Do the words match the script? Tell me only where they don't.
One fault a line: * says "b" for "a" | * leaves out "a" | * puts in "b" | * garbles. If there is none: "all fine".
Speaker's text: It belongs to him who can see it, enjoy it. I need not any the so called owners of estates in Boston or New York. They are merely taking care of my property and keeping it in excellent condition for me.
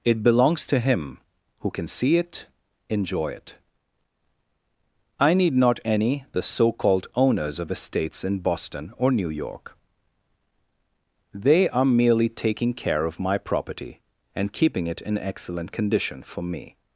all fine